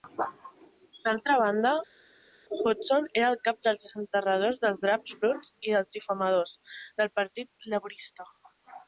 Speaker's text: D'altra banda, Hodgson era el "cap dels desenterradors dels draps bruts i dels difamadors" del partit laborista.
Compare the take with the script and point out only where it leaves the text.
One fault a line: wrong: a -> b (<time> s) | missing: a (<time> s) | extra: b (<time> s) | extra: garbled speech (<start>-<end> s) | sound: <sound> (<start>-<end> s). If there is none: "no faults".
no faults